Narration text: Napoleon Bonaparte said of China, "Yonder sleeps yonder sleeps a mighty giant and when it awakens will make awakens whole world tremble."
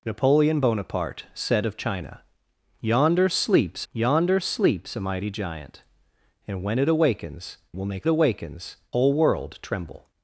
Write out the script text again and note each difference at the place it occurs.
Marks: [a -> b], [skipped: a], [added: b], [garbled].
Napoleon Bonaparte said of China, "Yonder sleeps yonder sleeps a mighty giant and when it awakens will make awakens whole world tremble."